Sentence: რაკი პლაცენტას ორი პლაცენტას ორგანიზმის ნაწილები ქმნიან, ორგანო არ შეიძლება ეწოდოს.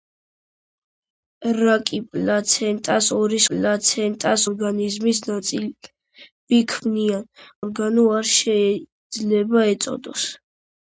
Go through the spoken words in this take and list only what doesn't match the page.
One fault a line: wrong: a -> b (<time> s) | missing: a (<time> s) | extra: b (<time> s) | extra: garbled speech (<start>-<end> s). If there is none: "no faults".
no faults